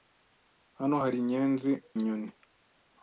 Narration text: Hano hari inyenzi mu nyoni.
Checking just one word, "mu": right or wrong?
wrong